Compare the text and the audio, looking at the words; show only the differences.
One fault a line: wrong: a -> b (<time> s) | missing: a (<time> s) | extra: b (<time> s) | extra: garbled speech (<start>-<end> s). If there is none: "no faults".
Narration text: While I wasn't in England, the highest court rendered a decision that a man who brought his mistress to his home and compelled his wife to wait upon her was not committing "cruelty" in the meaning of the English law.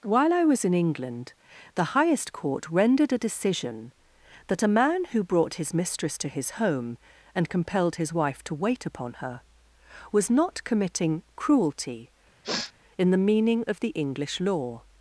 wrong: wasn't -> was (0.5 s)